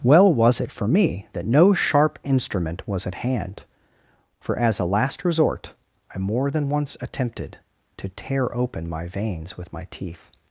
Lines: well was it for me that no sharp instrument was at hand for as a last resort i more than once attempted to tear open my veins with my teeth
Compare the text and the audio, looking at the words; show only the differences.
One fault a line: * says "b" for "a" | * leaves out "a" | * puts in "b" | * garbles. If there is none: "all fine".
all fine